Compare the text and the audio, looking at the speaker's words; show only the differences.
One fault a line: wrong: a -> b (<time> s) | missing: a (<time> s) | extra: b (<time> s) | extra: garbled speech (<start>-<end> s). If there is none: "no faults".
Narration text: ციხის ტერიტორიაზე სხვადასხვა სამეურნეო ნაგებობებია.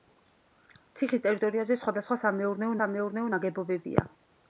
extra: სამეურნეო (2.8 s)